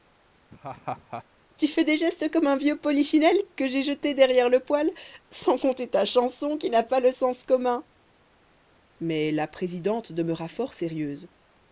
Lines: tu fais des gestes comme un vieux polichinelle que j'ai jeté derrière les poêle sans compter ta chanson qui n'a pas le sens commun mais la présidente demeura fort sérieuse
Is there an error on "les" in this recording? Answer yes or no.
yes